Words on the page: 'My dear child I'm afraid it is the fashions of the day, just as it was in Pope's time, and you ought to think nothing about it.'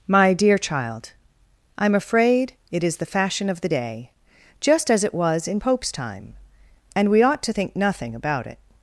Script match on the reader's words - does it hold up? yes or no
no